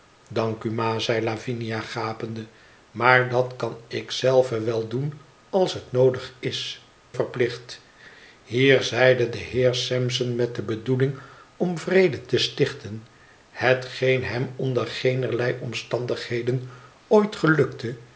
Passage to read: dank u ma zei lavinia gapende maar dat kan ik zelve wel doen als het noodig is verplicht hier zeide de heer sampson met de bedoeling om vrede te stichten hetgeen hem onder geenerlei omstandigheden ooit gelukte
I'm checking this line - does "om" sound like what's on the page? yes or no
yes